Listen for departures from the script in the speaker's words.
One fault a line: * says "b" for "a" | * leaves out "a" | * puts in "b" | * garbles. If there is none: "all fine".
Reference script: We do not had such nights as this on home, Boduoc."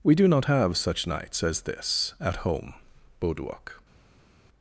* says "have" for "had"
* says "at" for "on"